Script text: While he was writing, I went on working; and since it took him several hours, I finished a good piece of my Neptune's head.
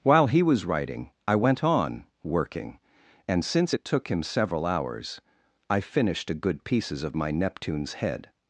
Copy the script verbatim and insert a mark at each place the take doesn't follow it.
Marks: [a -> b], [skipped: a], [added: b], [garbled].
While he was writing, I went on working; and since it took him several hours, I finished a good [piece -> pieces] of my Neptune's head.